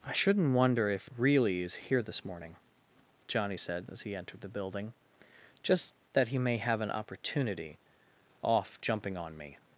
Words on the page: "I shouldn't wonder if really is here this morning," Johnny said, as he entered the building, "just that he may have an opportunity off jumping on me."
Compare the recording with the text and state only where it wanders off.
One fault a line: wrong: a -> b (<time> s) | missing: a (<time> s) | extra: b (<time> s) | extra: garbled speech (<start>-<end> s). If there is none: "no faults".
no faults